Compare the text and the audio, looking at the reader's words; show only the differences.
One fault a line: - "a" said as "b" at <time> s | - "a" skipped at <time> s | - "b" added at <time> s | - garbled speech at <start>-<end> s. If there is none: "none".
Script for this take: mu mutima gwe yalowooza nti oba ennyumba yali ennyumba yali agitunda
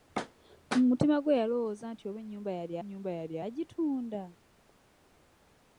none